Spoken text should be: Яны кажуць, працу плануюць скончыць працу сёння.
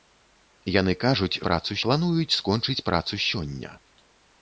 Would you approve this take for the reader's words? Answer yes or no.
yes